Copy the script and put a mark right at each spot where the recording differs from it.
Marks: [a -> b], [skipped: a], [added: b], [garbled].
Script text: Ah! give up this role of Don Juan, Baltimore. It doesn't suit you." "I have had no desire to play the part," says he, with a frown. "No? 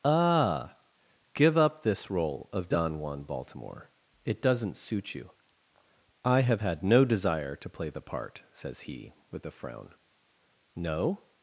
Ah! give up this role of Don Juan, Baltimore. It doesn't suit you." "I have had no desire to play the part," says he, with a frown. "No?